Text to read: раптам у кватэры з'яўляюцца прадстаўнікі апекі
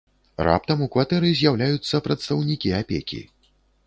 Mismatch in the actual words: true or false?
false